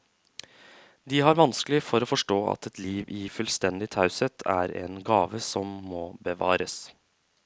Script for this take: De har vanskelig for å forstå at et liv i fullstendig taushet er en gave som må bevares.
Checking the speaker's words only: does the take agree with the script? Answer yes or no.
yes